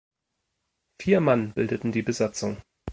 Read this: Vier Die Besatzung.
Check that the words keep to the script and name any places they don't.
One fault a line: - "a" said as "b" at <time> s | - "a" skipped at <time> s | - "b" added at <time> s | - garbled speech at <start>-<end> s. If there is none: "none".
- "Mann bildeten" added at 1.2 s